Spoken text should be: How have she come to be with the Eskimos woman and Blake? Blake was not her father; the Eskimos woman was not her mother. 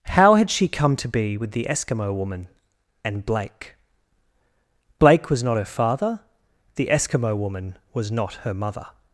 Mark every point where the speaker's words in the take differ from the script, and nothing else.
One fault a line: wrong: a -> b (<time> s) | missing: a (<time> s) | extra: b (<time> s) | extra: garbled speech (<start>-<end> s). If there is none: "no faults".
wrong: have -> had (0.3 s)
wrong: Eskimos -> Eskimo (1.7 s)
wrong: Eskimos -> Eskimo (6.9 s)